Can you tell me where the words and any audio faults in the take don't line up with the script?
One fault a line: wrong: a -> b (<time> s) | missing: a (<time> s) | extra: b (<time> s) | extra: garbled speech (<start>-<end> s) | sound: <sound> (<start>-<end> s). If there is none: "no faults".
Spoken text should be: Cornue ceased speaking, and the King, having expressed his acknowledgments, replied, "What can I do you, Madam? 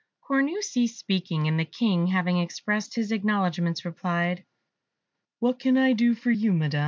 extra: for (6.1 s)